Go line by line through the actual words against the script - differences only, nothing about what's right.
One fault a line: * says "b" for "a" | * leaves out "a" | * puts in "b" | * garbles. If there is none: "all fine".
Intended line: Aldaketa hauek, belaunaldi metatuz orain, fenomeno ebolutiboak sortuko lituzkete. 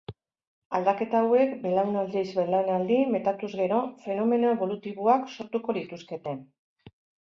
* puts in "belaunaldiz"
* says "gero" for "orain"